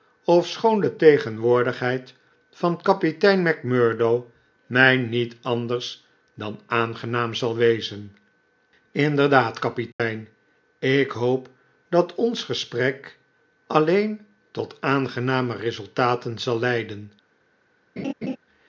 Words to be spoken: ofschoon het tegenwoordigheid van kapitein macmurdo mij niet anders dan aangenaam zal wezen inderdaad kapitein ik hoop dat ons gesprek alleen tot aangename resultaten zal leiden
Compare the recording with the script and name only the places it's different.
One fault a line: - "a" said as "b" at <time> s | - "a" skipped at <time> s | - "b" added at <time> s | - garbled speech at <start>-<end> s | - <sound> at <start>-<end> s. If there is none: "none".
- "het" said as "de" at 0.8 s
- dropout at 9.9-10.0 s
- laugh at 18.0-18.4 s